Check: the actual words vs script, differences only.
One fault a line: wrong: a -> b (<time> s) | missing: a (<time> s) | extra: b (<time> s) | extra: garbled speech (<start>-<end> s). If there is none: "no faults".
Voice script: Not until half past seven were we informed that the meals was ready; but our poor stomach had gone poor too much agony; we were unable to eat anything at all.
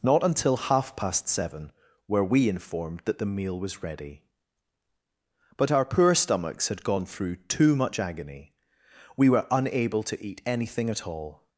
wrong: meals -> meal (3.3 s)
wrong: stomach -> stomachs (6.1 s)
wrong: poor -> through (7.0 s)